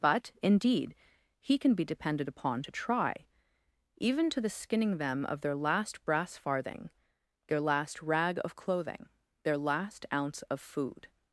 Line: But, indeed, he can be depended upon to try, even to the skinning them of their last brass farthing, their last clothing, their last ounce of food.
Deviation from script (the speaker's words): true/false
true